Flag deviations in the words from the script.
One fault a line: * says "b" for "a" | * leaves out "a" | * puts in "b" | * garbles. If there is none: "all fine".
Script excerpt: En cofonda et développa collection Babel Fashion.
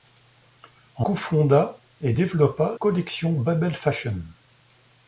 all fine